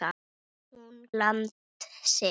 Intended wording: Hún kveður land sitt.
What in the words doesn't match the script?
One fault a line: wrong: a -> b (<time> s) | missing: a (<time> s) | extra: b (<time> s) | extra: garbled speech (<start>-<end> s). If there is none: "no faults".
missing: kveður (0.9 s)